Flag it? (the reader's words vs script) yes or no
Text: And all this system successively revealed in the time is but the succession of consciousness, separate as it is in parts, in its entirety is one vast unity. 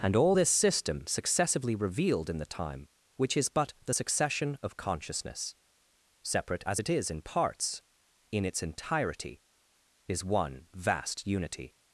yes